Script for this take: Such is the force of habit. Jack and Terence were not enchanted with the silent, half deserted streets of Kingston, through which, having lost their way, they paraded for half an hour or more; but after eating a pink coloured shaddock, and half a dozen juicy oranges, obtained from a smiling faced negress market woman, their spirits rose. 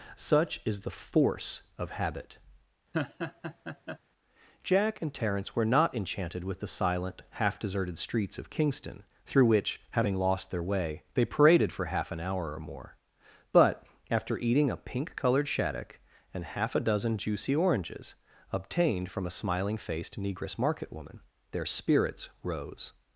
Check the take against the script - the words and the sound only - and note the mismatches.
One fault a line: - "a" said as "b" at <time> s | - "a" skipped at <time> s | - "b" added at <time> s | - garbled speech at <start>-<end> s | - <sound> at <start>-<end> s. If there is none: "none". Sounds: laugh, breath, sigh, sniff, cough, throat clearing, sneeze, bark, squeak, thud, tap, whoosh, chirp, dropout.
- laugh at 2.9-4.0 s